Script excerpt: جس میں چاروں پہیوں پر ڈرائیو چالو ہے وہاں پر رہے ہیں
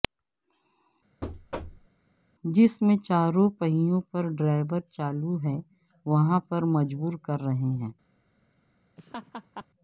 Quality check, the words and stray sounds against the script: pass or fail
fail